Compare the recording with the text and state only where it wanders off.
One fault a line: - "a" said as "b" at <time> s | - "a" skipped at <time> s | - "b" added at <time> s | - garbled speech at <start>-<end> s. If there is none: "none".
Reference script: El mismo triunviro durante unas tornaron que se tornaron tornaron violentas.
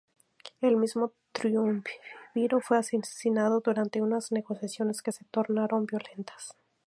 - "fue asesinado" added at 2.6 s
- "tornaron" said as "negociaciones" at 4.3 s
- "tornaron" skipped at 5.9 s